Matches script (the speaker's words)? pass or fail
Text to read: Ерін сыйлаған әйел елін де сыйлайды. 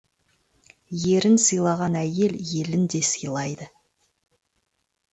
pass